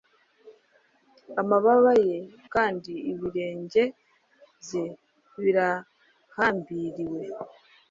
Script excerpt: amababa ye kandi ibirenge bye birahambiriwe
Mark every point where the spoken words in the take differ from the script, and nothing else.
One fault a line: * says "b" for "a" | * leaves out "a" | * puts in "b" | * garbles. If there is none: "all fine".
all fine